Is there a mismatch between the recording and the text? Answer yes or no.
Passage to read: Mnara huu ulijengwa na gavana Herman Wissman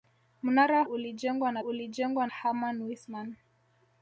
yes